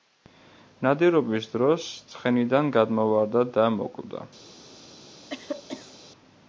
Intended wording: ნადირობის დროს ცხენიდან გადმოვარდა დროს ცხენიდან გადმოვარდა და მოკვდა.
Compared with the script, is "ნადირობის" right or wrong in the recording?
right